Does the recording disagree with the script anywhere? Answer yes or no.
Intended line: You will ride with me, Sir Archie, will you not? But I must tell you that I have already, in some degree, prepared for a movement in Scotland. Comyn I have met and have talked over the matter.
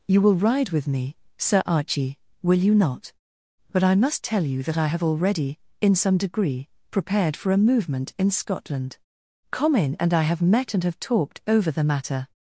yes